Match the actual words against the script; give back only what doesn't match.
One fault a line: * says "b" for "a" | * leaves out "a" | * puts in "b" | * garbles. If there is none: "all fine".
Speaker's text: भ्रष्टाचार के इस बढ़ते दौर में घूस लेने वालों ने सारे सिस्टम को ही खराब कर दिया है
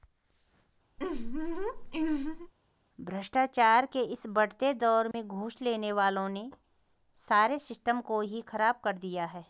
all fine